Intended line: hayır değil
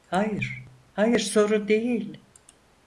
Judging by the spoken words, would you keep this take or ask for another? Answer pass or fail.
fail